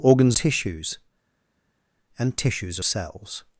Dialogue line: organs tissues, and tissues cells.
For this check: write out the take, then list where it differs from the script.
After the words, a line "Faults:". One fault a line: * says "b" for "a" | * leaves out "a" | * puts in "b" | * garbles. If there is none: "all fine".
organs tissues, and tissues cells.
Faults:
all fine